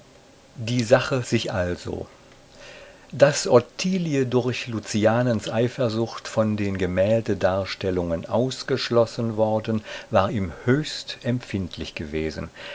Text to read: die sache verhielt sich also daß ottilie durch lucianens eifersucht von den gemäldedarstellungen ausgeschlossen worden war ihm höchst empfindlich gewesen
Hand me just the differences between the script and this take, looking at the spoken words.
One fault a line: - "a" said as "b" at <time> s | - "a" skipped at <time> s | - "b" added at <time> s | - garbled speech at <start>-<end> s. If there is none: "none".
- "verhielt" skipped at 1.2 s